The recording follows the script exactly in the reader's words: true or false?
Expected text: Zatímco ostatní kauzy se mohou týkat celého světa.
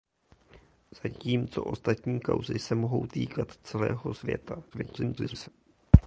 false